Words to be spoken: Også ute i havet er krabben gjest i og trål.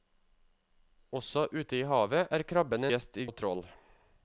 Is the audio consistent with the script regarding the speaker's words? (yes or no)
yes